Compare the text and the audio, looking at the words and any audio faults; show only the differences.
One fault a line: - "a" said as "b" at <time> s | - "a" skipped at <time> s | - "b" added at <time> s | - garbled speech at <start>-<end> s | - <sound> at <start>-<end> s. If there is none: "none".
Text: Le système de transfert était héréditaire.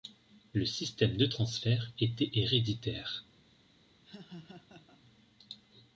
- laugh at 4.1-5.0 s